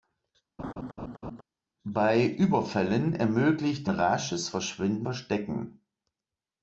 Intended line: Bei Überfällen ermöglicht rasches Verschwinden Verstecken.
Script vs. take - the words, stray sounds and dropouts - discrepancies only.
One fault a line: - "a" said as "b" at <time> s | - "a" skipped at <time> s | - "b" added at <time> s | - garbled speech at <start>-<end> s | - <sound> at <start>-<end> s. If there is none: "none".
- laugh at 0.6-1.4 s